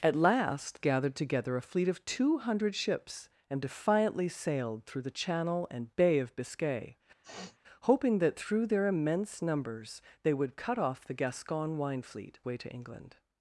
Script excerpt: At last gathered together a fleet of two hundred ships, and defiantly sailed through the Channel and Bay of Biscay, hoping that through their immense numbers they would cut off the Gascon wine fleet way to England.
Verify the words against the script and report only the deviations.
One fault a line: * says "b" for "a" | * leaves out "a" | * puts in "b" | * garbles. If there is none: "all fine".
all fine